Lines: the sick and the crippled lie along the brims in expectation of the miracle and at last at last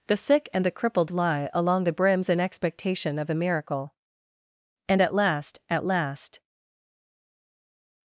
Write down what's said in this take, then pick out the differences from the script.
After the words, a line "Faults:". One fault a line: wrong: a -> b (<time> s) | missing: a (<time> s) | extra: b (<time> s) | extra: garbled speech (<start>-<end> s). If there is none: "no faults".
the sick and the crippled lie along the brims in expectation of a miracle and at last at last
Faults:
wrong: the -> a (3.3 s)